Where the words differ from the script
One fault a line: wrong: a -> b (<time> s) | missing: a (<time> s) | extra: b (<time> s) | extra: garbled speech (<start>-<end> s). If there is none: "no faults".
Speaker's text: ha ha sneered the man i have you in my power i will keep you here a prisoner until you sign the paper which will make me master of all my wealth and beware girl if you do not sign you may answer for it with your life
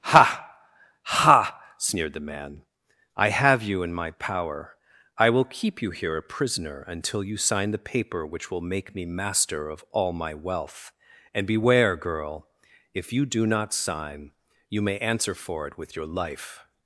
no faults